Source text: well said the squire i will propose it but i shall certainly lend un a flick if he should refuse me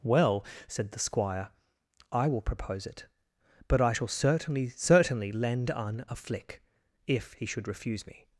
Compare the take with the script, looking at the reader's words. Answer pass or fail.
fail